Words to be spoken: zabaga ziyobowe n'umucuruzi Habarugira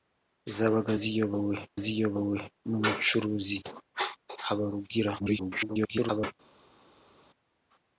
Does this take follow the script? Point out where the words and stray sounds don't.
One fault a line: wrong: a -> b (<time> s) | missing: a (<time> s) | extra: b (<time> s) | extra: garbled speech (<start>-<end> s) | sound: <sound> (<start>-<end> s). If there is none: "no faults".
extra: ziyobowe (1.8 s)
extra: garbled speech (5.2-6.3 s)